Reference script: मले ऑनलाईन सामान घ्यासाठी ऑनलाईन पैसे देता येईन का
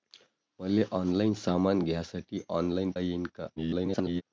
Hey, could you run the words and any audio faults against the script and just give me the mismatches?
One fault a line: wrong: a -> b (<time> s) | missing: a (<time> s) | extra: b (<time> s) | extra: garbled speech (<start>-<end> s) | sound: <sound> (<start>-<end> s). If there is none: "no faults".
missing: पैसे देता (2.9 s)
extra: garbled speech (3.6-4.2 s)